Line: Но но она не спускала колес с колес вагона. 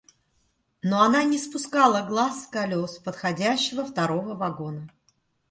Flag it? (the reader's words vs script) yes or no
yes